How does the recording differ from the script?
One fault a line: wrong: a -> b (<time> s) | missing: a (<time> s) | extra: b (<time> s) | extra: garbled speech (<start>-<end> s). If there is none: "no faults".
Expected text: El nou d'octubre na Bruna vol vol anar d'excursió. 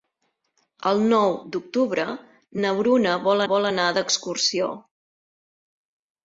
no faults